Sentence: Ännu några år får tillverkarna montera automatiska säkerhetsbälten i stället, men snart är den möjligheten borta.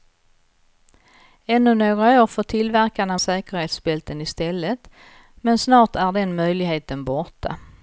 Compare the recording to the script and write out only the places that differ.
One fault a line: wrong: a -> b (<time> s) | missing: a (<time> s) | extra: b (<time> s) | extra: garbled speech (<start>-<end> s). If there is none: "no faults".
missing: montera automatiska (3.2 s)